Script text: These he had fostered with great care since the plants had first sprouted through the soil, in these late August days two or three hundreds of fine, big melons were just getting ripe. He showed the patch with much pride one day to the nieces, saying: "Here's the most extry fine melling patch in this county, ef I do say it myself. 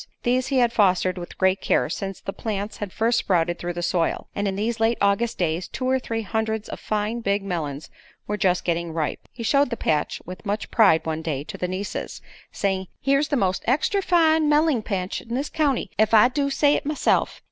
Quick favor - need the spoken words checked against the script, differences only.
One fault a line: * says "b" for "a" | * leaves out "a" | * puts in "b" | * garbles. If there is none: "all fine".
* puts in "and"